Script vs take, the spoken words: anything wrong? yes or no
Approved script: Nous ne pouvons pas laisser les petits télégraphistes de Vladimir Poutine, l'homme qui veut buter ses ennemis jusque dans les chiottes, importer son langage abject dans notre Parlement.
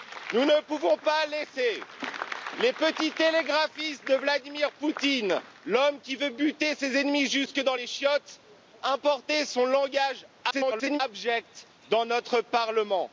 yes